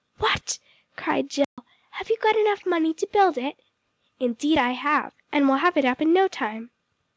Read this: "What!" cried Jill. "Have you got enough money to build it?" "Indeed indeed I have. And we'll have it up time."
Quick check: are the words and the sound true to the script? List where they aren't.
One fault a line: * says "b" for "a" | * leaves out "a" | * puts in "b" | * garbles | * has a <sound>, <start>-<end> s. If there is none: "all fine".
* has a dropout, 1.4-1.6 s
* leaves out "indeed"
* puts in "in no"